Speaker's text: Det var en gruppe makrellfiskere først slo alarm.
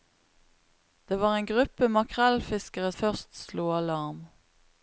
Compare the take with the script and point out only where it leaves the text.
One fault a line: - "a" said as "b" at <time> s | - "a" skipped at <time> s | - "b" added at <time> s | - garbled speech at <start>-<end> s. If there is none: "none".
none